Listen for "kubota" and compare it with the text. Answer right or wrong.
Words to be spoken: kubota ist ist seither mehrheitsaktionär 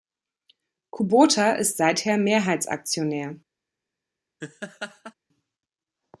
right